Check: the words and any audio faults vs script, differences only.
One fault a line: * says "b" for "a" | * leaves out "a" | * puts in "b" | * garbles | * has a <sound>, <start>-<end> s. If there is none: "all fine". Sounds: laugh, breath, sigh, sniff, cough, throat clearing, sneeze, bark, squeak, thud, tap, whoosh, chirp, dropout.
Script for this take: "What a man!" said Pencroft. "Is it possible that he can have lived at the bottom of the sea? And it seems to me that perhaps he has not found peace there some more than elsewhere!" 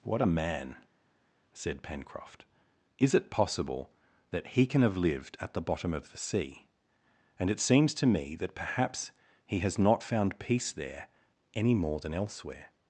* says "any" for "some"